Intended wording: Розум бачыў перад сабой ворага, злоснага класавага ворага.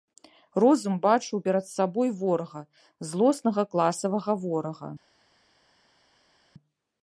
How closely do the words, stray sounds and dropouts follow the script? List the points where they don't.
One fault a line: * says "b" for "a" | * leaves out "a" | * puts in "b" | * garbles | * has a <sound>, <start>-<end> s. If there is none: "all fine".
all fine